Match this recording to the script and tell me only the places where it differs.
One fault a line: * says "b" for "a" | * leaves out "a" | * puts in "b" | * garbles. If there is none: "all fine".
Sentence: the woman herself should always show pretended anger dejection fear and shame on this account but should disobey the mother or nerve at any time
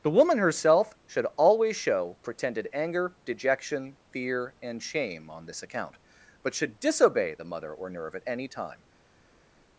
all fine